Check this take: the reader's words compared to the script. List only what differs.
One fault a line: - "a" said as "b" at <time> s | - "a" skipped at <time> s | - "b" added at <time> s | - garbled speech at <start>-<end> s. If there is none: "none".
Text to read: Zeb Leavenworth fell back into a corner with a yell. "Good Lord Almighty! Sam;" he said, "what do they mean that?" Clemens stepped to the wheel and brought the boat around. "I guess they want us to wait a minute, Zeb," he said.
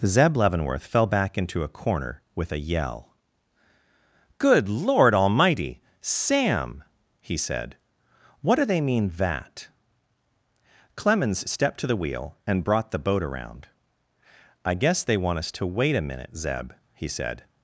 none